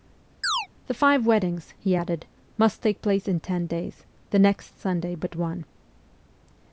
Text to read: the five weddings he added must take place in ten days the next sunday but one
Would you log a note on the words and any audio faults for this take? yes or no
yes